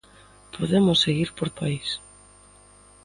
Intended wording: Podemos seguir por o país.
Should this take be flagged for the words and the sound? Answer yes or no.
no